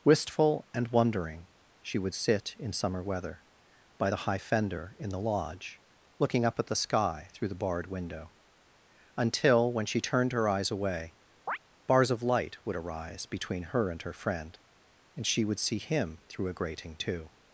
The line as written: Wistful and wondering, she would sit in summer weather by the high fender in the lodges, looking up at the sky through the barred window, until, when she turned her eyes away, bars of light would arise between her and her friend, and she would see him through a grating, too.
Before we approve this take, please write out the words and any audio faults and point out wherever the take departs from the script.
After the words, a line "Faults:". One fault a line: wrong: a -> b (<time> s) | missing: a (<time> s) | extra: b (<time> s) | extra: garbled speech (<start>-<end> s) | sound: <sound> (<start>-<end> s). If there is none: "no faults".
Wistful and wondering, she would sit in summer weather by the high fender in the lodge, looking up at the sky through the barred window, until, when she turned her eyes away, bars of light would arise between her and her friend, and she would see him through a grating, too.
Faults:
wrong: lodges -> lodge (5.2 s)
sound: chirp (11.5-11.6 s)